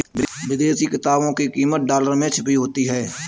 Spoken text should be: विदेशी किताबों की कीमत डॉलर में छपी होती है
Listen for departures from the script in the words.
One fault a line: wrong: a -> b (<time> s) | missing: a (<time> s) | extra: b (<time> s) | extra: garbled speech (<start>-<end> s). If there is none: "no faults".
no faults